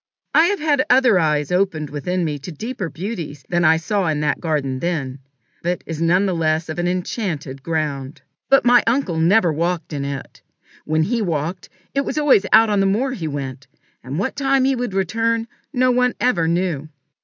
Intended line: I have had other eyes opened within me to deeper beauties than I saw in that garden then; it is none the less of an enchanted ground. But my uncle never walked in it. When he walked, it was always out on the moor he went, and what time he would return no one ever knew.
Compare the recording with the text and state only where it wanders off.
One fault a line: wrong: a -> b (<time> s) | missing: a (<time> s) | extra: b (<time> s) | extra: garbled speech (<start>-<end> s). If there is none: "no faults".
no faults